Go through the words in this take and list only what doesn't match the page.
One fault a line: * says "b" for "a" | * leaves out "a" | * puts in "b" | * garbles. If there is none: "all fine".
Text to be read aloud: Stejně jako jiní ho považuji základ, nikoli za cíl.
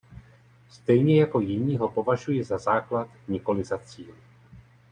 * puts in "za"